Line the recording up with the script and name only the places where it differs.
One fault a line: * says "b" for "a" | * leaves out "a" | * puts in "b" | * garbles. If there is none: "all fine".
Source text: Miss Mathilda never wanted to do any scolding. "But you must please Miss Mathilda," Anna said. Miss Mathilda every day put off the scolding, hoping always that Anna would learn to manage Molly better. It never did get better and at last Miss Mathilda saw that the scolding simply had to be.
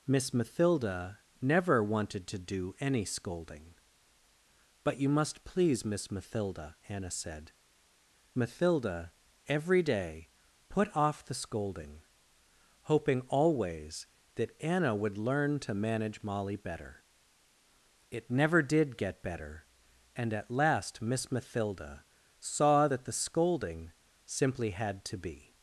* leaves out "Miss"